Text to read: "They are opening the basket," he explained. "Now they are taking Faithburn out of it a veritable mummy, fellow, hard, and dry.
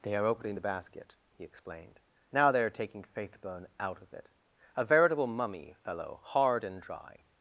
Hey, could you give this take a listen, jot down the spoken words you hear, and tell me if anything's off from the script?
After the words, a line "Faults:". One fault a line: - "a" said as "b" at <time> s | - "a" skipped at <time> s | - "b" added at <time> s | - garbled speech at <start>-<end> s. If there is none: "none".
"They are opening the basket," he explained. "Now they are taking Faithburn out of it a veritable mummy, fellow, hard, and dry.
Faults:
none